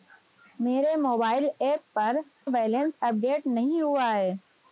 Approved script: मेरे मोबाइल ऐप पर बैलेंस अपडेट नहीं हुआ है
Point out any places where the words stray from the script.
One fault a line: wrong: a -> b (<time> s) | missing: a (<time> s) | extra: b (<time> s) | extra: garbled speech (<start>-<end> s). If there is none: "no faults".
no faults